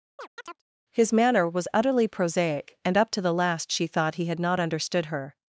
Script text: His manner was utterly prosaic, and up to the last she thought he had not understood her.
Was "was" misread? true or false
false